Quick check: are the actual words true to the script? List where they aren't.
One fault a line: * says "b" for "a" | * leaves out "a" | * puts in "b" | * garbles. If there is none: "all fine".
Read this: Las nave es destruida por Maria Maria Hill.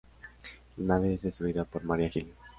* says "La" for "Las"
* leaves out "Maria"